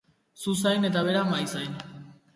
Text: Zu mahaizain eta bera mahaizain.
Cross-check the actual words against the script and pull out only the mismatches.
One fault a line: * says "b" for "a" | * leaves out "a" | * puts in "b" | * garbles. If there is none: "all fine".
* says "zain" for "mahaizain"